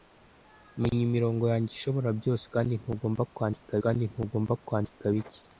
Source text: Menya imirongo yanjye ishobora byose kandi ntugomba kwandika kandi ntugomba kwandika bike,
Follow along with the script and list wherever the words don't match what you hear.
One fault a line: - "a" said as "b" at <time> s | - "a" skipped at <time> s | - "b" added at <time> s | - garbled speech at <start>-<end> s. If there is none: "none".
none